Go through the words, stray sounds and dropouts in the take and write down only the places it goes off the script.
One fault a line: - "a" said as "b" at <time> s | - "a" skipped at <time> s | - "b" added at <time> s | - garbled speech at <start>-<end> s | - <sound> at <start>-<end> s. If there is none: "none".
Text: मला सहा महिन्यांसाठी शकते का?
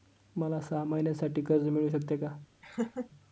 - "कर्ज मिळू" added at 1.4 s
- laugh at 2.6-3.1 s